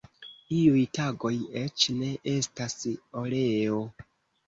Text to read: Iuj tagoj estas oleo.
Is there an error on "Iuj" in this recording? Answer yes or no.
no